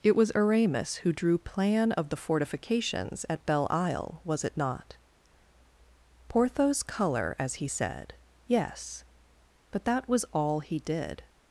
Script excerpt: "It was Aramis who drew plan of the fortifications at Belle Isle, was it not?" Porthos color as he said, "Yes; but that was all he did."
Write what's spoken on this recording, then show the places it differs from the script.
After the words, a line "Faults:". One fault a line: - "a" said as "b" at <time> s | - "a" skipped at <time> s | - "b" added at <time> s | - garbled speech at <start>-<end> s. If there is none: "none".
"It was Aramis who drew plan of the fortifications at Belle Isle, was it not?" Porthos color as he said, "Yes; but that was all he did."
Faults:
none